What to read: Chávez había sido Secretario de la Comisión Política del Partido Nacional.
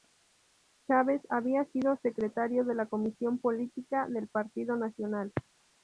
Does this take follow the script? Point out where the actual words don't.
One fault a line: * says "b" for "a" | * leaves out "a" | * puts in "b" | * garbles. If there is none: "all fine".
all fine